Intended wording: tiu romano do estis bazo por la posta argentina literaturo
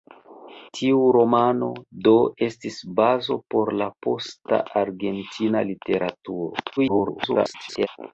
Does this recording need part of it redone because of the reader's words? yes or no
yes